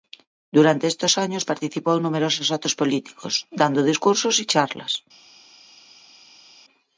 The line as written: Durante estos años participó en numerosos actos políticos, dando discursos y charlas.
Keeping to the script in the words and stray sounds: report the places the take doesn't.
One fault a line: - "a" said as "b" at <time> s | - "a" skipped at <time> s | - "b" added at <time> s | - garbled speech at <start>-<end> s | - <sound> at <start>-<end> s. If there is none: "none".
none